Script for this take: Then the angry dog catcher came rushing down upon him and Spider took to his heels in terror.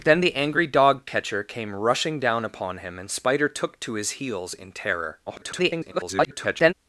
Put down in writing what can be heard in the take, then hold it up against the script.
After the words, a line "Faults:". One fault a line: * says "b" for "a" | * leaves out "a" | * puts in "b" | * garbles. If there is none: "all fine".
Then the angry dog catcher came rushing down upon him and Spider took to his heels in terror. [garbled]
Faults:
* garbles